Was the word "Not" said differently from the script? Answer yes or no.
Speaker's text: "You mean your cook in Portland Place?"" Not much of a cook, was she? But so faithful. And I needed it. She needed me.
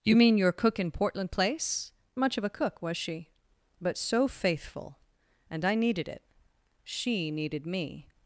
yes